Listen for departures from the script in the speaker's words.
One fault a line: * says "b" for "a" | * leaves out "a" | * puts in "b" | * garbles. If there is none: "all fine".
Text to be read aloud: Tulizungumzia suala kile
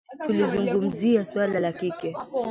* puts in "la"